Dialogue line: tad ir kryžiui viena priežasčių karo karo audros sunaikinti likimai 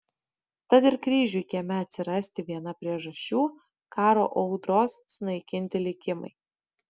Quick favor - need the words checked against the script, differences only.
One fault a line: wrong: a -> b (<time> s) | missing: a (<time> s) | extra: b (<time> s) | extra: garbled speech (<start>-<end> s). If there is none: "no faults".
extra: kieme atsirasti (1.5 s)
missing: karo (4.2 s)